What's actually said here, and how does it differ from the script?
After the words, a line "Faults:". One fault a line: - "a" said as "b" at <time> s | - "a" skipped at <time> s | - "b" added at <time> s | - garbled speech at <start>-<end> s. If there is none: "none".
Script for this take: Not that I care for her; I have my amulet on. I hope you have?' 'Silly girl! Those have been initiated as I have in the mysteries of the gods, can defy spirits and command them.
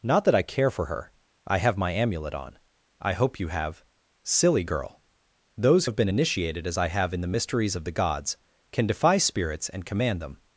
Not that I care for her; I have my amulet on. I hope you have?' 'Silly girl! Those have been initiated as I have in the mysteries of the gods, can defy spirits and command them.
Faults:
none